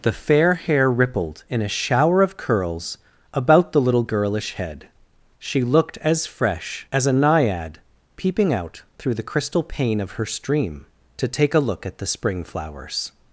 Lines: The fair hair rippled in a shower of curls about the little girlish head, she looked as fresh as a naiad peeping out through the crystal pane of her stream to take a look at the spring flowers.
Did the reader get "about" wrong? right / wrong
right